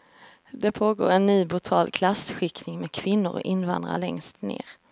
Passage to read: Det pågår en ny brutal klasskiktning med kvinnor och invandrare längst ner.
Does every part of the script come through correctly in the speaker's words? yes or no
yes